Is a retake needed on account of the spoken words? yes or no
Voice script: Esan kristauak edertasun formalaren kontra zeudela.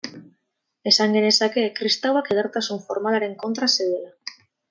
yes